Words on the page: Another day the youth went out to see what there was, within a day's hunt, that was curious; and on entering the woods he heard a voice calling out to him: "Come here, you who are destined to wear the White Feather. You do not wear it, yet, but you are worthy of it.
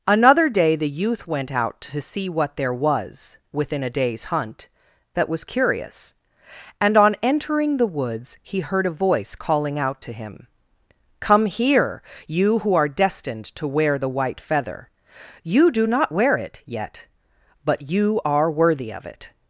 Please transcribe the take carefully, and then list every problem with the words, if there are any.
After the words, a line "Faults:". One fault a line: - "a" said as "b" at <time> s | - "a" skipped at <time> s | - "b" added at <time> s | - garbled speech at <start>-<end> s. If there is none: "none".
Another day the youth went out to see what there was, within a day's hunt, that was curious; and on entering the woods he heard a voice calling out to him: "Come here, you who are destined to wear the White Feather. You do not wear it, yet, but you are worthy of it.
Faults:
none